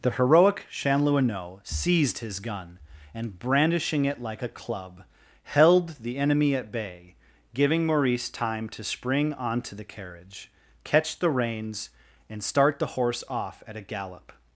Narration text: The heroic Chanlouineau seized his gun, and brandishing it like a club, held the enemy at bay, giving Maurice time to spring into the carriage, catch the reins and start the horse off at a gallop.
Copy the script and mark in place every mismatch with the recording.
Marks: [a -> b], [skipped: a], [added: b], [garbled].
The heroic Chanlouineau seized his gun, and brandishing it like a club, held the enemy at bay, giving Maurice time to spring [into -> onto] the carriage, catch the reins and start the horse off at a gallop.